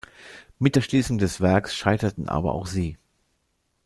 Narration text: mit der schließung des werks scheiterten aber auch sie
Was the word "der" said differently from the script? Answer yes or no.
no